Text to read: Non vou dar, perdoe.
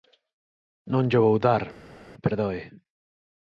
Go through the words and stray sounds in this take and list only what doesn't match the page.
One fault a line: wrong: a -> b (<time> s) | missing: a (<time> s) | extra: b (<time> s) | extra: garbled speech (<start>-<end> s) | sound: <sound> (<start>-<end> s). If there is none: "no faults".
extra: llo (1.1 s)